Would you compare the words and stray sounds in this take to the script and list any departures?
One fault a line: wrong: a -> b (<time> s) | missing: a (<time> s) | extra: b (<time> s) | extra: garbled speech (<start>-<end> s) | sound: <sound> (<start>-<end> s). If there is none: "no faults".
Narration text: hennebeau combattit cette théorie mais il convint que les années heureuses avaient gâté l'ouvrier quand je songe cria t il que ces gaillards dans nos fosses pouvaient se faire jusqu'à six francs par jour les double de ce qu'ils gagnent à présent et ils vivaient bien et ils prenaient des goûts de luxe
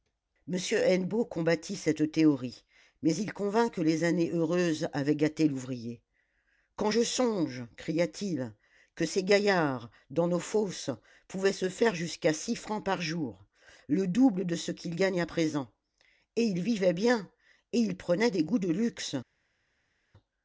wrong: les -> le (13.9 s)